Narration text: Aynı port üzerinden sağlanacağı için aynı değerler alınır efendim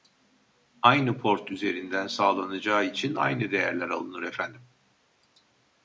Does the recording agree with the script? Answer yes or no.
yes